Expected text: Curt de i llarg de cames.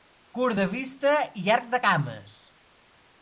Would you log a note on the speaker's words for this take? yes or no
yes